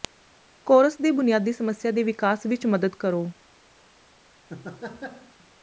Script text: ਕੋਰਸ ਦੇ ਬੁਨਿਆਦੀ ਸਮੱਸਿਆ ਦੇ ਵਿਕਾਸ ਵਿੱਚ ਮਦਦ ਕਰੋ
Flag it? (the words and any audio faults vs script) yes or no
yes